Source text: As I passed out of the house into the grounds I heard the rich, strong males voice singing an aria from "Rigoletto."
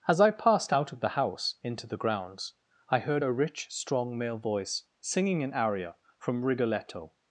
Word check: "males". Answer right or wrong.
wrong